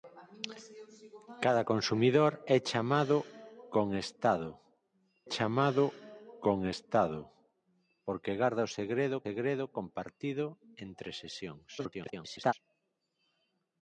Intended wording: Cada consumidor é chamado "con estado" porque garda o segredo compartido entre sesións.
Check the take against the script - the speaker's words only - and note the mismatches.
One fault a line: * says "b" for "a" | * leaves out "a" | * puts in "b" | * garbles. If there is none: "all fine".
* puts in "chamado con estado"
* puts in "segredo"
* garbles